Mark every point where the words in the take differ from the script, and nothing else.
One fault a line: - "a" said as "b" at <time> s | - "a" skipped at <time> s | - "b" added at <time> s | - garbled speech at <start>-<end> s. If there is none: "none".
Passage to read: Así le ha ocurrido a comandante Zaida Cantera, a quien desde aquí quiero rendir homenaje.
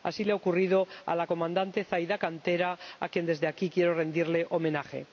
- "la" added at 1.1 s